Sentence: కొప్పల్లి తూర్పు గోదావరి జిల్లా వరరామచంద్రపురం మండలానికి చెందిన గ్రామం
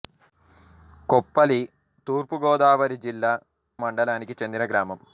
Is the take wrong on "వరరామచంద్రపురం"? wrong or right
wrong